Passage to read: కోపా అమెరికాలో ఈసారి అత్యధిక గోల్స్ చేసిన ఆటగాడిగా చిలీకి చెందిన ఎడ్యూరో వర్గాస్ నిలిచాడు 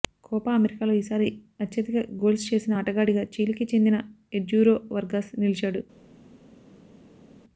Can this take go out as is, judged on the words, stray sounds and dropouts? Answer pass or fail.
pass